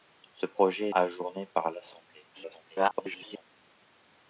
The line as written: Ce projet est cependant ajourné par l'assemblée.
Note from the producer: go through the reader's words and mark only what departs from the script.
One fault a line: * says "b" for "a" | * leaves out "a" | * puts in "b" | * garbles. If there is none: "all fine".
* leaves out "est cependant"
* garbles